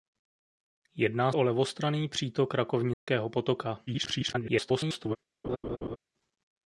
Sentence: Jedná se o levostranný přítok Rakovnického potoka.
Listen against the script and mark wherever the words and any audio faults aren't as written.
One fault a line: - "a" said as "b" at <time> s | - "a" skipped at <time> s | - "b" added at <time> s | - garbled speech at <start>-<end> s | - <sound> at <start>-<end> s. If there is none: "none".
- "se" skipped at 1.3 s
- dropout at 2.9-3.1 s
- garbled speech at 3.9-5.2 s
- laugh at 5.4-6.0 s